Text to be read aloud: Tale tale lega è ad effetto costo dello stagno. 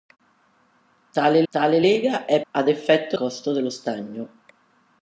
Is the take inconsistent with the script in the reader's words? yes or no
no